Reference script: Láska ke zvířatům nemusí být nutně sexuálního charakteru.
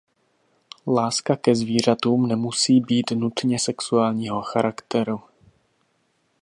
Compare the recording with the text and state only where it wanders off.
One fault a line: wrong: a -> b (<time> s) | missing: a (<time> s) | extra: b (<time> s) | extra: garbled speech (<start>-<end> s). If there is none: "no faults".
no faults